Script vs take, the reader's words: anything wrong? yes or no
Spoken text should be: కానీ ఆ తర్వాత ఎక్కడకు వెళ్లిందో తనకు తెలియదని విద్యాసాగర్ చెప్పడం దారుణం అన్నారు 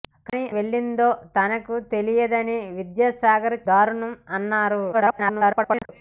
yes